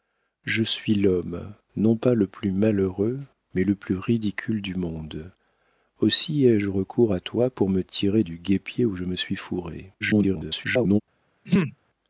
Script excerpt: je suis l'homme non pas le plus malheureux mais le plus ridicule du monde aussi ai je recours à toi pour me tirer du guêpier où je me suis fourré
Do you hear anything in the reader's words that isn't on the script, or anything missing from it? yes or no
yes